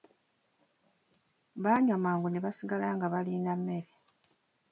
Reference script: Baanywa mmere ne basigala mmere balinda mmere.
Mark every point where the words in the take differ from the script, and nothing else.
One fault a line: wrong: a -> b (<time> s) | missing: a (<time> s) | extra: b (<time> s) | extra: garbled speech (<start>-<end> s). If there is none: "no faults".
wrong: mmere -> mangu (2.0 s)
wrong: mmere -> nga (3.0 s)